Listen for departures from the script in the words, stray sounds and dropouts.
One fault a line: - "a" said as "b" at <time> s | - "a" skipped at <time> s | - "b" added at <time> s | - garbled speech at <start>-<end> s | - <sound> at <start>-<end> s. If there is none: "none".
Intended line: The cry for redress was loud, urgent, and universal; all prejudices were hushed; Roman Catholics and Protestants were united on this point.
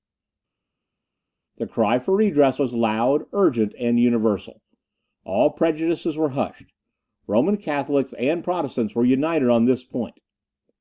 none